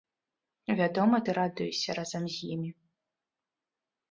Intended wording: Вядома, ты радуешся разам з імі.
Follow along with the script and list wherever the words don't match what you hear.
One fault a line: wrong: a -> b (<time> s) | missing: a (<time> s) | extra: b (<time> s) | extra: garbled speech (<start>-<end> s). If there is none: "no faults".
no faults